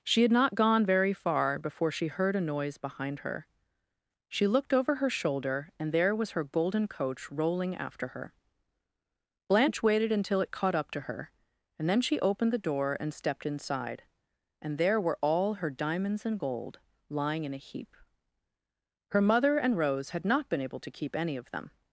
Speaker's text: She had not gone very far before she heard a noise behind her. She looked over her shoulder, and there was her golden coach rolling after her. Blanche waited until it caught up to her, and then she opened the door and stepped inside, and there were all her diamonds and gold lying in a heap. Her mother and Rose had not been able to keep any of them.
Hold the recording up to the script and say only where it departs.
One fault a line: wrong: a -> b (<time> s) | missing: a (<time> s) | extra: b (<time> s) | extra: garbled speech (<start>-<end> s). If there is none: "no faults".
no faults